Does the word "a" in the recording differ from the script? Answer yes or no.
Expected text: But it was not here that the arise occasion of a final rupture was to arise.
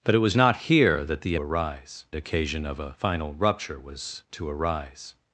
no